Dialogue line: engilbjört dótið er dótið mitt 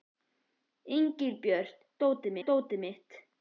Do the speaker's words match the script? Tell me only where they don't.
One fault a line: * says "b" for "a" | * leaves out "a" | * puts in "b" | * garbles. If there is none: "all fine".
all fine